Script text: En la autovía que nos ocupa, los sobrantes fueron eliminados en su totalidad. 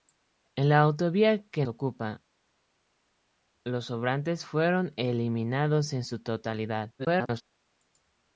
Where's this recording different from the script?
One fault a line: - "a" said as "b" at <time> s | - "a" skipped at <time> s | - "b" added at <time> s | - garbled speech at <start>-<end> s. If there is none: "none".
- "nos" skipped at 1.6 s
- garbled speech at 7.0-7.4 s